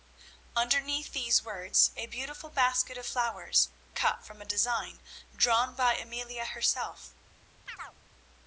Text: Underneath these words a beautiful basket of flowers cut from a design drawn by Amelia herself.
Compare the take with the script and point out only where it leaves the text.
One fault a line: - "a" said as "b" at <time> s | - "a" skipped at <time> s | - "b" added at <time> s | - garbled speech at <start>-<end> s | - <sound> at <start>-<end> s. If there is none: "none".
- chirp at 7.7-8.0 s